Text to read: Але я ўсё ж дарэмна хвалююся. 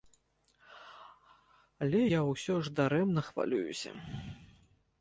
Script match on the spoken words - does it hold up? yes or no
yes